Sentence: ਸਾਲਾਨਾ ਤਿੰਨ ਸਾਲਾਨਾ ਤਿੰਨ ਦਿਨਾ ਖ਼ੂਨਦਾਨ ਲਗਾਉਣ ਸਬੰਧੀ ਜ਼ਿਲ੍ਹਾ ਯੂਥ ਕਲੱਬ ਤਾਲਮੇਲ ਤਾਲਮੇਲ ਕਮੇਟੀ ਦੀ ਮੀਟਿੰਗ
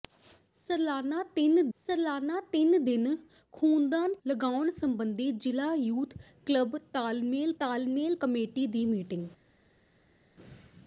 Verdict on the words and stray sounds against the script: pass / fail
pass